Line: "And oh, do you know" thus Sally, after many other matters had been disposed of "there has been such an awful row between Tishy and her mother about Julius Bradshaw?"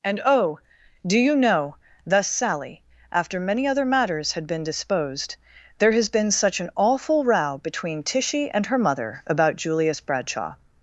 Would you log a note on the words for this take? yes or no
yes